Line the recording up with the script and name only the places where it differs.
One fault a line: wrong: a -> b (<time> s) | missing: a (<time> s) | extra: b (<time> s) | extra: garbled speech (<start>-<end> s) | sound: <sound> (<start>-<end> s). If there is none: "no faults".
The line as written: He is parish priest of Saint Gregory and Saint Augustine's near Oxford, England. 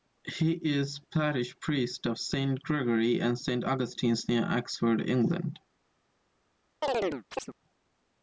sound: chirp (6.8-7.5 s)